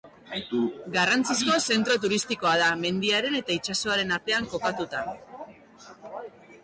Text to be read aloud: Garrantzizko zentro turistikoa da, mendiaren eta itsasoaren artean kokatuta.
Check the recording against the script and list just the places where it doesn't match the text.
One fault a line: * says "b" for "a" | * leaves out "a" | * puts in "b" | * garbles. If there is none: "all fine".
all fine